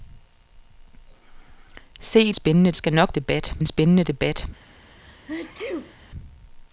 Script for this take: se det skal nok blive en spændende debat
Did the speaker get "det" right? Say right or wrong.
wrong